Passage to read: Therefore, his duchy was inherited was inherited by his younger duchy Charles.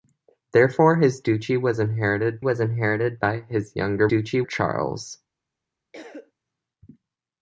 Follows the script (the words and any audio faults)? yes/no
no